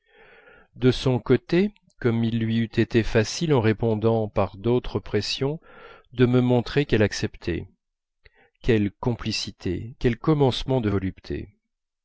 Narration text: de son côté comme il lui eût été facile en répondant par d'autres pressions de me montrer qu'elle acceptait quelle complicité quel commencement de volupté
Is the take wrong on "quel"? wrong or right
right